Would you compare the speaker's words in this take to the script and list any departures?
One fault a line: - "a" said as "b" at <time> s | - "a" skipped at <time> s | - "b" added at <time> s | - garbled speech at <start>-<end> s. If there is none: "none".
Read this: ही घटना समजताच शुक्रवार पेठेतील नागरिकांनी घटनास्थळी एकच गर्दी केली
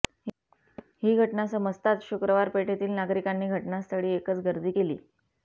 none